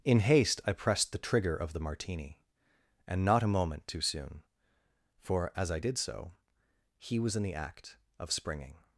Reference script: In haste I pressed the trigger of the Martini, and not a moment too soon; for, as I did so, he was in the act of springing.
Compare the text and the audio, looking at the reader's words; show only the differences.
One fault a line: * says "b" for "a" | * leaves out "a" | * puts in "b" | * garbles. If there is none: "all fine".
all fine